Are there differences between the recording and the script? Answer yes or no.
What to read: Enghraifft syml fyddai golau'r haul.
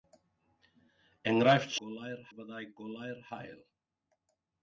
yes